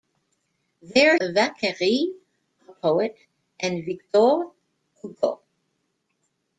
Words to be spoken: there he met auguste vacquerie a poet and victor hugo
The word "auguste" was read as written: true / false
false